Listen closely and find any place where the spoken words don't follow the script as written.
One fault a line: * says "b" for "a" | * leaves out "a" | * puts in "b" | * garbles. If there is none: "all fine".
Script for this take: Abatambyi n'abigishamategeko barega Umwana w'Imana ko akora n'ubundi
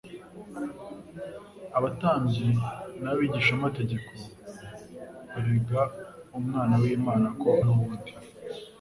* leaves out "akora"